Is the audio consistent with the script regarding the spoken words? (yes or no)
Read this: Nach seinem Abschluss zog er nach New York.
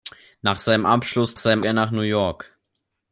no